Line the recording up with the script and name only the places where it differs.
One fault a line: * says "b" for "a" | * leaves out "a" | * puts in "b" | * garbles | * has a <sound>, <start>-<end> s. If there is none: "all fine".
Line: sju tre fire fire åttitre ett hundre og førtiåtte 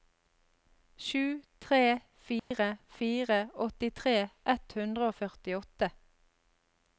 * has a dropout, 2.4-2.5 s